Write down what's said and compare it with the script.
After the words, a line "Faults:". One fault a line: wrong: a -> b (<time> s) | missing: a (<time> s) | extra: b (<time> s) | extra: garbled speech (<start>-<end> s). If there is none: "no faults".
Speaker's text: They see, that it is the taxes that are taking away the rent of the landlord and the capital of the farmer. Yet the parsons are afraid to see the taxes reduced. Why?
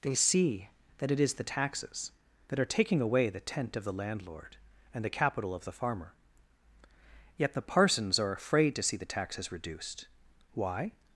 They see, that it is the taxes that are taking away the tent of the landlord and the capital of the farmer. Yet the parsons are afraid to see the taxes reduced. Why?
Faults:
wrong: rent -> tent (3.4 s)